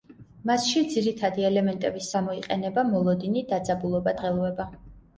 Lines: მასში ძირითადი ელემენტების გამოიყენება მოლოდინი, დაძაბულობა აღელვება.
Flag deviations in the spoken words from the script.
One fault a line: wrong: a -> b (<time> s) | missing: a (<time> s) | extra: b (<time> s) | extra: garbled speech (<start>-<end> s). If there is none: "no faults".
no faults